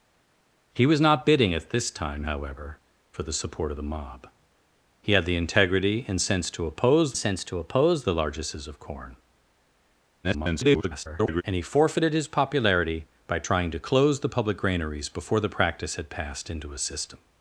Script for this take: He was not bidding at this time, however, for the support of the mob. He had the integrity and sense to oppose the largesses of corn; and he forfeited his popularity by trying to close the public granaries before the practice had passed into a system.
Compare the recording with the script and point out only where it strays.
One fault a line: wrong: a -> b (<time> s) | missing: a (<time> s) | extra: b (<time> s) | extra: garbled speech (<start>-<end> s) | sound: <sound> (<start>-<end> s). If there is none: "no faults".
extra: sense to oppose (7.1 s)
extra: garbled speech (10.2-11.4 s)